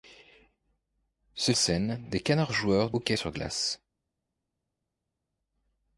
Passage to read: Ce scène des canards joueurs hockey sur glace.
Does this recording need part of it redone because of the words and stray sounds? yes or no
no